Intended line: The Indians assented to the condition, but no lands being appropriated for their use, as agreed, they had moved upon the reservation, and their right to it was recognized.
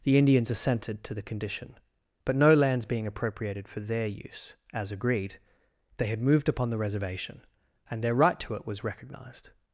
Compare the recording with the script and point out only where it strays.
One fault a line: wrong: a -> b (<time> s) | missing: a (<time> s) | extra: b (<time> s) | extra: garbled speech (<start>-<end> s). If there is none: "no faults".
no faults